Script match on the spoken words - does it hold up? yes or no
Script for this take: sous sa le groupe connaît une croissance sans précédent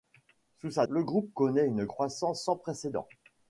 yes